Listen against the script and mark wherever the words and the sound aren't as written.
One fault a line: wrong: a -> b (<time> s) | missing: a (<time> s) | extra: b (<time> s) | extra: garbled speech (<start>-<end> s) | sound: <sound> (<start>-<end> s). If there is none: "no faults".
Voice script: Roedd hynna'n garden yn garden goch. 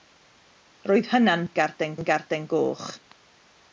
no faults